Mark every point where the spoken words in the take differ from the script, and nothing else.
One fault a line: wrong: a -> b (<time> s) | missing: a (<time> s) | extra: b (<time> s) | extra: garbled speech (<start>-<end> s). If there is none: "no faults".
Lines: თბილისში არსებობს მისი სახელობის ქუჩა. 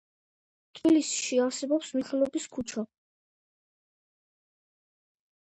missing: მისი (1.9 s)